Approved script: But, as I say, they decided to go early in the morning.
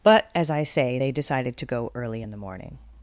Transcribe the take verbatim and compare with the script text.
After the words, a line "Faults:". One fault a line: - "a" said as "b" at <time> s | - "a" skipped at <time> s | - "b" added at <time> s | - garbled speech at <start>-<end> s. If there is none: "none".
But, as I say, they decided to go early in the morning.
Faults:
none